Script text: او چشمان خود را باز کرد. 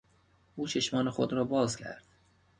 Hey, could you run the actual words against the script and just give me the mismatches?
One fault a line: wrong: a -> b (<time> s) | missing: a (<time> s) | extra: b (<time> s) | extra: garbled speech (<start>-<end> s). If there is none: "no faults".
no faults